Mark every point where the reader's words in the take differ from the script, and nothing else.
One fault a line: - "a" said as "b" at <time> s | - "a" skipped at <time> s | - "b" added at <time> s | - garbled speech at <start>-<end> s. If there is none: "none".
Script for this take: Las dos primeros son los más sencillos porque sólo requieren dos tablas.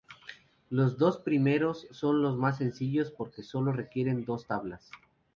- "Las" said as "Los" at 0.7 s